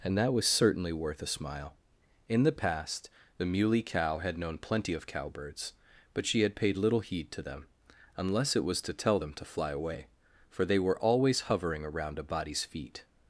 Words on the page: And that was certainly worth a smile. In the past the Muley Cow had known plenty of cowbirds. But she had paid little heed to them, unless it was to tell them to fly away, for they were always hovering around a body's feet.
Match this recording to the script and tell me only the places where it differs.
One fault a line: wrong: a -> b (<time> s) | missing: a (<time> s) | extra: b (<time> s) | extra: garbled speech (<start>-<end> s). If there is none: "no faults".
no faults